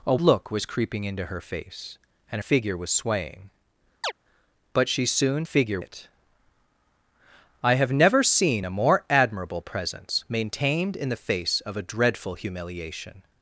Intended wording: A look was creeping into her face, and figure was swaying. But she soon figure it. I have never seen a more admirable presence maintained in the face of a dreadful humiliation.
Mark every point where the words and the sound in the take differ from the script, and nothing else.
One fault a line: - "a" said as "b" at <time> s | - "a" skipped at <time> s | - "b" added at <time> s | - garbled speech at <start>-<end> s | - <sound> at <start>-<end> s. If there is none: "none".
- chirp at 4.0-4.1 s